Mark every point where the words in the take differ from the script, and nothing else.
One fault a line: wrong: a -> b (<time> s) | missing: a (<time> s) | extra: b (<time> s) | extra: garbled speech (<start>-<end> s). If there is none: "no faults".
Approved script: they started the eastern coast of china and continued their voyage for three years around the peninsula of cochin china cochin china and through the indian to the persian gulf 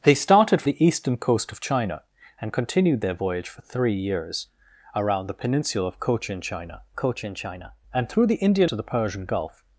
no faults